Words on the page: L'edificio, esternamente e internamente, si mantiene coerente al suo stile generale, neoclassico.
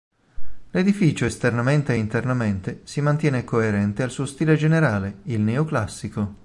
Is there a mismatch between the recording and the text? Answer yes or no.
yes